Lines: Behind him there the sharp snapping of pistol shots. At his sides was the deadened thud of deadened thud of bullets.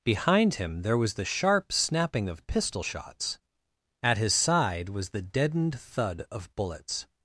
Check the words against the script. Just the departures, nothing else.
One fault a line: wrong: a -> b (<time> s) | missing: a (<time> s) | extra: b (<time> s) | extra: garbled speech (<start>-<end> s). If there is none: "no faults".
extra: was (1.0 s)
wrong: sides -> side (4.3 s)
missing: deadened thud of (6.5 s)